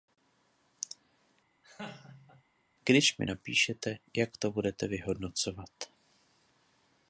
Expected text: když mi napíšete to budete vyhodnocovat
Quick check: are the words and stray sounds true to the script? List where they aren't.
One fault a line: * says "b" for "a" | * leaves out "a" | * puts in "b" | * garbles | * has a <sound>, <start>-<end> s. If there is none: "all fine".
* has a laugh, 1.6-2.4 s
* puts in "jak"